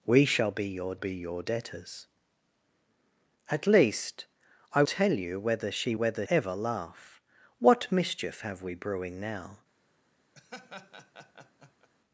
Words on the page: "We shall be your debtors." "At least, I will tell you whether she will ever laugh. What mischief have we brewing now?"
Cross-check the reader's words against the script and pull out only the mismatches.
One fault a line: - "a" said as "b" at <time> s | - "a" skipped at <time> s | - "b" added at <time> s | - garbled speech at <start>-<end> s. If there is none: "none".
- "be your" added at 0.9 s
- "will" skipped at 4.8 s
- "will" said as "whether" at 5.9 s